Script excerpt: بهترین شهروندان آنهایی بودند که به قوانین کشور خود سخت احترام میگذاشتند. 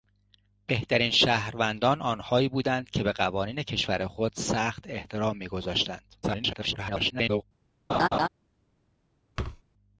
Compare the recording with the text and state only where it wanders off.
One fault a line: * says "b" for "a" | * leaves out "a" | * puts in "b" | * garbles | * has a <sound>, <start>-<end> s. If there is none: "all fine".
* garbles
* has a laugh, 7.9-8.3 s
* has a thud, 9.4-9.6 s